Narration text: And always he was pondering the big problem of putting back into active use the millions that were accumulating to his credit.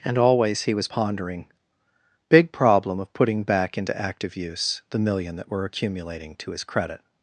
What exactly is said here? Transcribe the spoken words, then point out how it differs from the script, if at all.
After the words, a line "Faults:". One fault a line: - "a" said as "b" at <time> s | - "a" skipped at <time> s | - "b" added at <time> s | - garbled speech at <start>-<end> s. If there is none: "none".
And always he was pondering big problem of putting back into active use the million that were accumulating to his credit.
Faults:
- "the" skipped at 1.5 s
- "millions" said as "million" at 5.0 s